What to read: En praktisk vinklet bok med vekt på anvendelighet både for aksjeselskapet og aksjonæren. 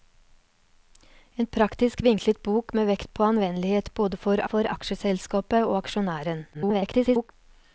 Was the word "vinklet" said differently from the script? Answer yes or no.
no